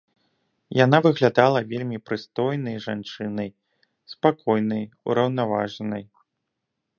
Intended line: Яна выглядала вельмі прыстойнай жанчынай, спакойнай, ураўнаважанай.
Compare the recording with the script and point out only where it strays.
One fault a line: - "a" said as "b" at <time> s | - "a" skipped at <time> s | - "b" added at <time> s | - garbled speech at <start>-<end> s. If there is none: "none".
none